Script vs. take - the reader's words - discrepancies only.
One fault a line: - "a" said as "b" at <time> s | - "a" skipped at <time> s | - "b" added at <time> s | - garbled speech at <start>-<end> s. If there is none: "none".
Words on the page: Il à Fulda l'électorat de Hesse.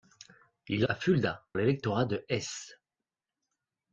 none